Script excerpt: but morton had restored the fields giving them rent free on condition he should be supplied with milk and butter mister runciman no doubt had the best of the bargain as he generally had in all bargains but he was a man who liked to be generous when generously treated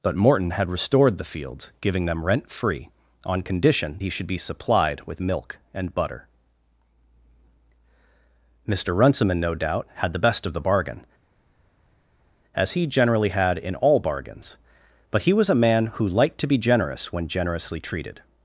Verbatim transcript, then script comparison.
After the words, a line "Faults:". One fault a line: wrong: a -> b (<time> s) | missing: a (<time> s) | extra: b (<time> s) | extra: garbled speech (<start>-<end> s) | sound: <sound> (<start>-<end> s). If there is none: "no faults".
but morton had restored the fields giving them rent free on condition he should be supplied with milk and butter mister runciman no doubt had the best of the bargain as he generally had in all bargains but he was a man who liked to be generous when generously treated
Faults:
no faults